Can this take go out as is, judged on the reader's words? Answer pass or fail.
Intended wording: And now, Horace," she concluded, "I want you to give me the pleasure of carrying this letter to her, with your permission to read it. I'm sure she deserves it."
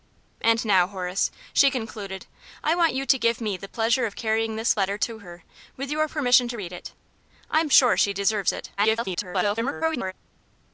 fail